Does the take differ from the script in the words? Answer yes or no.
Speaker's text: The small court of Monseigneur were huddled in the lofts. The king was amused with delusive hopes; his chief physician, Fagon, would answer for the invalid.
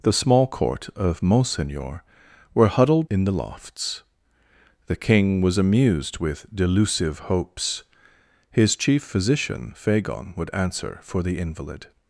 no